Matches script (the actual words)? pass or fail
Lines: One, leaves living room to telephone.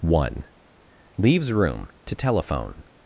fail